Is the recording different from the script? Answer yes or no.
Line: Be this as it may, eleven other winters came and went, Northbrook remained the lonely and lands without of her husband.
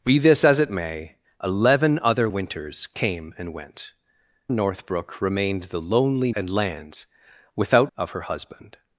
no